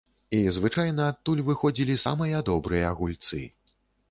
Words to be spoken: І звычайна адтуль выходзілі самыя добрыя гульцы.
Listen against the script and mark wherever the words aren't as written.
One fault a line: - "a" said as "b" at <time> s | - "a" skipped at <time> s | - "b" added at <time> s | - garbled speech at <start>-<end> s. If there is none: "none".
none